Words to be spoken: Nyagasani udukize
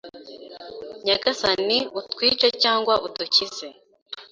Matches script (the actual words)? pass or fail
fail